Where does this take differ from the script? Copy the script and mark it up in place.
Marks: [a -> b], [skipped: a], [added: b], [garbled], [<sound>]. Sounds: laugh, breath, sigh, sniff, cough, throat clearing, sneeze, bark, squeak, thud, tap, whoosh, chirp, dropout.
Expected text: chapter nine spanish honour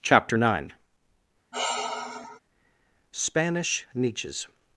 chapter nine [sigh] spanish [honour -> niches]